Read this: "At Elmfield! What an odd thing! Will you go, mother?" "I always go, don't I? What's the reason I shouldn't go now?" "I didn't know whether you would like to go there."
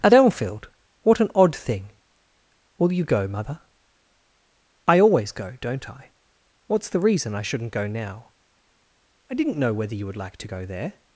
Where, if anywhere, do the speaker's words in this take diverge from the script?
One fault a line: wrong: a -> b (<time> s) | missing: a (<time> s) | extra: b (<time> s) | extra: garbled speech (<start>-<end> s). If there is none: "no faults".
no faults